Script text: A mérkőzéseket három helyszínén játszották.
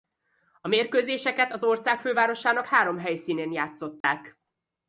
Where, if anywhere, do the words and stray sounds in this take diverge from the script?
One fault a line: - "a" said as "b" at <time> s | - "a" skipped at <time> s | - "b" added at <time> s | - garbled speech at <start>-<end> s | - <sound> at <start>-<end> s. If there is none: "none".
- "az ország fővárosának" added at 1.5 s
- dropout at 4.0-4.0 s